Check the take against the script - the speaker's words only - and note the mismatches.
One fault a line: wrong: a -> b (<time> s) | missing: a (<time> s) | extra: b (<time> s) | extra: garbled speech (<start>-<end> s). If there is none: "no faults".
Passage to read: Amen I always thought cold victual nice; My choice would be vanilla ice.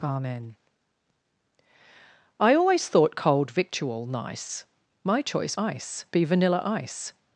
wrong: would -> ice (5.6 s)